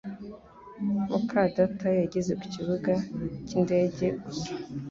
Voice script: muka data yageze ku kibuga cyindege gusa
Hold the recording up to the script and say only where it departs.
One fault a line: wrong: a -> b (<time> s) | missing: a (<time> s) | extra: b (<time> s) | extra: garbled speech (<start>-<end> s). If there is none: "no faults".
no faults